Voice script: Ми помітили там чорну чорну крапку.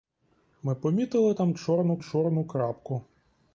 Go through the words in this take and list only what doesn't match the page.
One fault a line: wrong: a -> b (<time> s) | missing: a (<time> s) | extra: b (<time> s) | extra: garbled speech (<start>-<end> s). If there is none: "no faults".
no faults